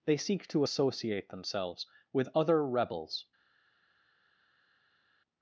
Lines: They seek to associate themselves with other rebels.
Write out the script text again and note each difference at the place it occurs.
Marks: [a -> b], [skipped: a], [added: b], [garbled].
They seek to associate themselves with other rebels.